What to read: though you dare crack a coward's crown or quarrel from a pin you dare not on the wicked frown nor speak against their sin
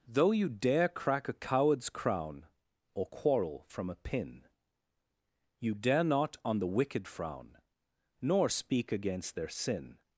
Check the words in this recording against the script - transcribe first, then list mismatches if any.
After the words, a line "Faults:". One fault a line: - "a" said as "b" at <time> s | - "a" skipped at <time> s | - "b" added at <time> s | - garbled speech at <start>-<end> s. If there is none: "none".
though you dare crack a coward's crown or quarrel from a pin you dare not on the wicked frown nor speak against their sin
Faults:
none